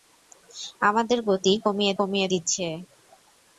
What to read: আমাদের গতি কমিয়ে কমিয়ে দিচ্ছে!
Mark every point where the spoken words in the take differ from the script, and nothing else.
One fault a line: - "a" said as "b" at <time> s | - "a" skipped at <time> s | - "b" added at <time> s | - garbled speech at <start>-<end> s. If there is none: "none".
none